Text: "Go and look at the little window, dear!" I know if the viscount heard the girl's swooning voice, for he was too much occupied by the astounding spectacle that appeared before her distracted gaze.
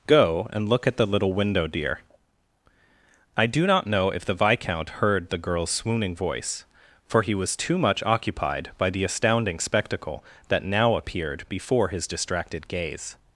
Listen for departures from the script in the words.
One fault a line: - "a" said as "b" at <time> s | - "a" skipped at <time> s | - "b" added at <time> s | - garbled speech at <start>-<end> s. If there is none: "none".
- "do not" added at 3.5 s
- "now" added at 10.6 s
- "her" said as "his" at 11.9 s